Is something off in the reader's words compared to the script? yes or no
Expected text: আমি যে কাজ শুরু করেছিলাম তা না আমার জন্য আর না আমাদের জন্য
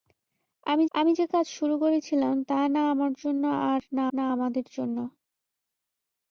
yes